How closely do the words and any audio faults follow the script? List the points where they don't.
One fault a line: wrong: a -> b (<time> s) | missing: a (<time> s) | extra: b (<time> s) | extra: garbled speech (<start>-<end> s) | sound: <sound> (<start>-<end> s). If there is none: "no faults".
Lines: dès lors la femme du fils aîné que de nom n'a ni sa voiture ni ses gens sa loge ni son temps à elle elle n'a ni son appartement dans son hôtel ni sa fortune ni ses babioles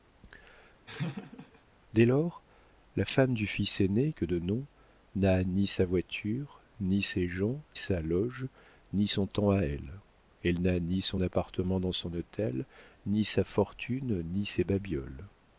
sound: laugh (0.9-1.6 s)